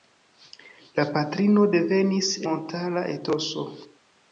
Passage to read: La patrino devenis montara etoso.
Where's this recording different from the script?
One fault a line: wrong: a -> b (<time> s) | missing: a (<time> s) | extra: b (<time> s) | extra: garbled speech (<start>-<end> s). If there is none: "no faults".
no faults